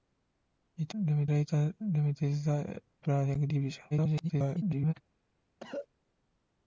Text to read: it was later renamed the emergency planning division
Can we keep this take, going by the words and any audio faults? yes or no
no